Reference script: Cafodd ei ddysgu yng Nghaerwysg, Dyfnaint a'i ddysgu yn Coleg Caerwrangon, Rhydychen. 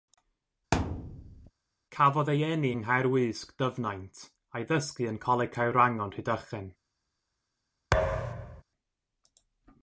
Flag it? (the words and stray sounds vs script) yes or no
yes